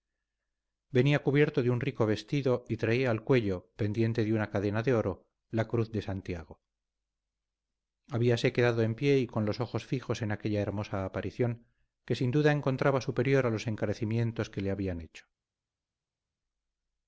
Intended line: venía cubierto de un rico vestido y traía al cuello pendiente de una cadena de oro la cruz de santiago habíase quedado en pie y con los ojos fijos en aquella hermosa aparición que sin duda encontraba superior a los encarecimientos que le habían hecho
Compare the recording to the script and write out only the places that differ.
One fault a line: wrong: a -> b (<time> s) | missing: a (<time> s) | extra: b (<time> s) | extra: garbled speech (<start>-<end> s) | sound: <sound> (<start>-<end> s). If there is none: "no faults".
no faults